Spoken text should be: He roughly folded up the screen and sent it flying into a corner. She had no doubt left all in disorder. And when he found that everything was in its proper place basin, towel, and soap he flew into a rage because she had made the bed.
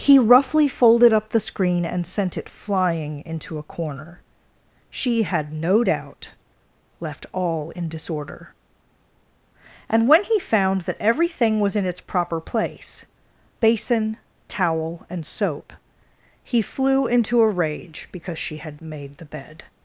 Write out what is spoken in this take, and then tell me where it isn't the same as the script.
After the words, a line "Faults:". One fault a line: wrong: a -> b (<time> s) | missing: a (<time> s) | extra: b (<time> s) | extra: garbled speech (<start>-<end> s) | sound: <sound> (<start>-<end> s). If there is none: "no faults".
He roughly folded up the screen and sent it flying into a corner. She had no doubt left all in disorder. And when he found that everything was in its proper place basin, towel, and soap he flew into a rage because she had made the bed.
Faults:
no faults